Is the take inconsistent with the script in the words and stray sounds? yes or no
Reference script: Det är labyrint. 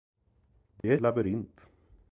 yes